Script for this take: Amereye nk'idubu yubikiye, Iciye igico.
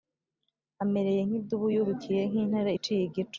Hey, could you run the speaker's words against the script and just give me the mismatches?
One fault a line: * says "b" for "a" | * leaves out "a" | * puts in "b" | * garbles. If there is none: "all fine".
* puts in "Nk'intare"